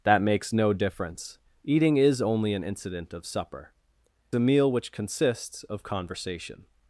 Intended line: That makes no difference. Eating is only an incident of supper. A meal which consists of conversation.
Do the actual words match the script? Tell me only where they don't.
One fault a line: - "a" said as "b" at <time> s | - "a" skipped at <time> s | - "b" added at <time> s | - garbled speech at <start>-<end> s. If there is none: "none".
none